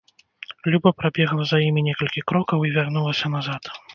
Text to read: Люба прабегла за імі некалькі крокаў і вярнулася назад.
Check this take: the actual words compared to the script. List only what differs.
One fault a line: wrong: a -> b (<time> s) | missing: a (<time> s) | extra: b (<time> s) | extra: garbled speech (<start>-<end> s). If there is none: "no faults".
no faults